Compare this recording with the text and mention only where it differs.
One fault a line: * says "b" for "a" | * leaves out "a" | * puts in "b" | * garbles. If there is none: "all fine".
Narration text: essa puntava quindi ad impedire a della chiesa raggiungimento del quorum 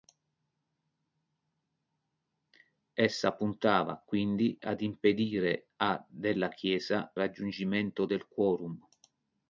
all fine